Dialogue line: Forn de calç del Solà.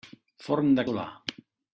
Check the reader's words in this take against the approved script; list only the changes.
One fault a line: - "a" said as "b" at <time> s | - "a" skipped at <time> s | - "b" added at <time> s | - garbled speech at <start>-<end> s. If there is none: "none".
- "calç del" skipped at 0.8 s